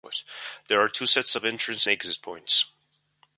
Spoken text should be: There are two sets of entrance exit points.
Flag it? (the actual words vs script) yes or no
no